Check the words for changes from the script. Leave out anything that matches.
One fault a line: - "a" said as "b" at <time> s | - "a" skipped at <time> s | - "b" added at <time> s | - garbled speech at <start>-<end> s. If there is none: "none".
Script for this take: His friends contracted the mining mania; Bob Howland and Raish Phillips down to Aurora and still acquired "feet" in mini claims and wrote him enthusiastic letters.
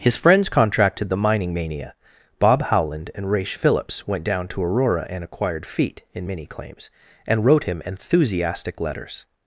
- "went" added at 4.1 s
- "still" skipped at 5.2 s